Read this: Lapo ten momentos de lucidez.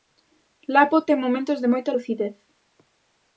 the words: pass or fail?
fail